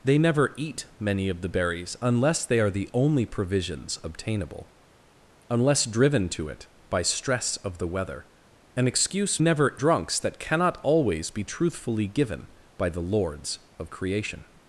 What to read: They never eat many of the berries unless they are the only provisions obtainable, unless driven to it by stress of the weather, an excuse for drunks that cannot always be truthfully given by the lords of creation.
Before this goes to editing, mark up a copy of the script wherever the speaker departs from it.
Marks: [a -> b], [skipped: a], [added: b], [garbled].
They never eat many of the berries unless they are the only provisions obtainable, unless driven to it by stress of the weather, an excuse [for -> never] drunks that cannot always be truthfully given by the lords of creation.